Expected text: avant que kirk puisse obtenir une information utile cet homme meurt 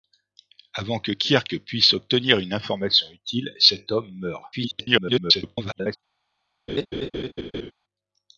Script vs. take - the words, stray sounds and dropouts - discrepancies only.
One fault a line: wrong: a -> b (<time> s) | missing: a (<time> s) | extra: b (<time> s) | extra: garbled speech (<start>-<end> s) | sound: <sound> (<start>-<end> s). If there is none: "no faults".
extra: garbled speech (4.5-6.0 s)
sound: laugh (6.7-7.7 s)